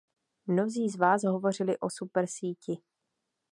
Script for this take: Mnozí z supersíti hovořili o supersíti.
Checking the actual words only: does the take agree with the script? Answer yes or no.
no